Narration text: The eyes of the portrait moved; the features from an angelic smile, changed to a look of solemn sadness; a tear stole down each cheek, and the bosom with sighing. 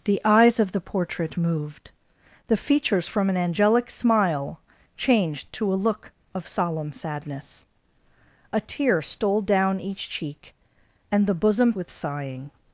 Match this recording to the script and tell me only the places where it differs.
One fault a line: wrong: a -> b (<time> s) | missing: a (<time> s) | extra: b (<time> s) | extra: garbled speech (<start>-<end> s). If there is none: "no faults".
no faults